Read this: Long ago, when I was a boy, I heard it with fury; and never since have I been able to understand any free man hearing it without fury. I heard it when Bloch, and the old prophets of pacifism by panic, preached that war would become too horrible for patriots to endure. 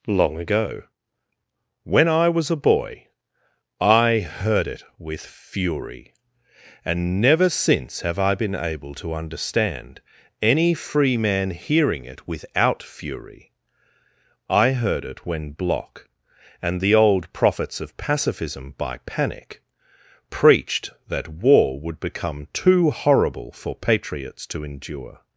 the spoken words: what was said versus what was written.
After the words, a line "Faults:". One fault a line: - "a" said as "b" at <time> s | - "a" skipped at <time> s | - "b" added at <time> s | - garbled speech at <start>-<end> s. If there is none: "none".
Long ago, when I was a boy, I heard it with fury; and never since have I been able to understand any free man hearing it without fury. I heard it when Bloch, and the old prophets of pacifism by panic, preached that war would become too horrible for patriots to endure.
Faults:
none